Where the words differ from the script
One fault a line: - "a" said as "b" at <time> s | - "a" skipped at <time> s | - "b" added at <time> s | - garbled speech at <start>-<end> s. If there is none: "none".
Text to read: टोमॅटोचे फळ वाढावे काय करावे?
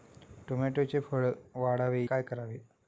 none